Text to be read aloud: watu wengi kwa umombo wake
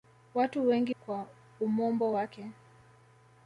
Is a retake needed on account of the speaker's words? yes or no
no